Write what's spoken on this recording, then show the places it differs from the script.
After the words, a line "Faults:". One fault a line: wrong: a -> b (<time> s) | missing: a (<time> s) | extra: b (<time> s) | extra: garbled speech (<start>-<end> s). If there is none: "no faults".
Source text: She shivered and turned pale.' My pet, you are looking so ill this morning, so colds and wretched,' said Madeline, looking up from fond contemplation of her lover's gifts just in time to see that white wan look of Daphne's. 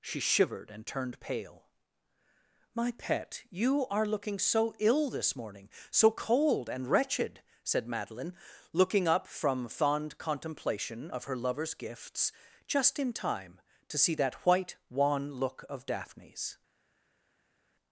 She shivered and turned pale.' My pet, you are looking so ill this morning, so cold and wretched,' said Madeline, looking up from fond contemplation of her lover's gifts just in time to see that white wan look of Daphne's.
Faults:
wrong: colds -> cold (6.1 s)